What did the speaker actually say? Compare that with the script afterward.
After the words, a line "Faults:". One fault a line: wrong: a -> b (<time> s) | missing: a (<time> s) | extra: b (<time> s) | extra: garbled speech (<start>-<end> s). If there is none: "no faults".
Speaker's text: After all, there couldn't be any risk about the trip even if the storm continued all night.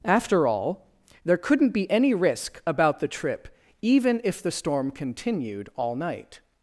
After all, there couldn't be any risk about the trip even if the storm continued all night.
Faults:
no faults